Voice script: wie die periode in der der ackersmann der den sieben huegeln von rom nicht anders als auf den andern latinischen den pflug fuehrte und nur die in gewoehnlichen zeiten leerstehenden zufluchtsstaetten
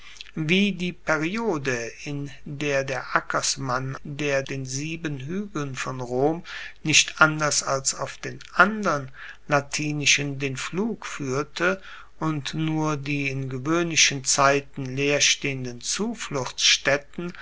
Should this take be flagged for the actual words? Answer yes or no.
no